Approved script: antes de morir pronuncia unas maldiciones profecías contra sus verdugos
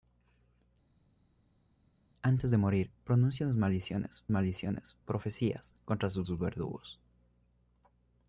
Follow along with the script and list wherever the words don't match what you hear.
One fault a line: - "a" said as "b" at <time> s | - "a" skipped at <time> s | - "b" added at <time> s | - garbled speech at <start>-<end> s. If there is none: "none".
- "maldiciones" added at 4.3 s
- "sus" added at 6.2 s